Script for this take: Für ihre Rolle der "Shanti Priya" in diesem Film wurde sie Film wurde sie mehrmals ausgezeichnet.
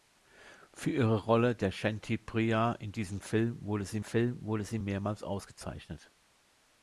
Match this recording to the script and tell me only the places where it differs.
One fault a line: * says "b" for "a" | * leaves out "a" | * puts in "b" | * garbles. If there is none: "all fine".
all fine